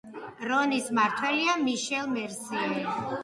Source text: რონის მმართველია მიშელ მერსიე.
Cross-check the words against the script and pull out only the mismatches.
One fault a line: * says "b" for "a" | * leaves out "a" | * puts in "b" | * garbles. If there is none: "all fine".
all fine